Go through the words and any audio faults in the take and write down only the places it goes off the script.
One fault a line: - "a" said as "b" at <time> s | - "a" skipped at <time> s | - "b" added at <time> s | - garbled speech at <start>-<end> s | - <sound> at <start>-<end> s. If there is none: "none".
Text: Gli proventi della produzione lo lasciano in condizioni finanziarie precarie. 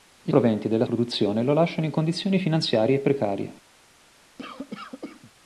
- cough at 4.4-5.3 s